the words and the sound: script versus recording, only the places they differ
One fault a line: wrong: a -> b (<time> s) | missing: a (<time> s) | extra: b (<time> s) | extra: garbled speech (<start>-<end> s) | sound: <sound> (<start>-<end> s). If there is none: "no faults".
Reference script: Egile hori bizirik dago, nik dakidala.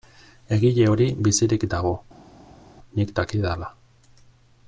no faults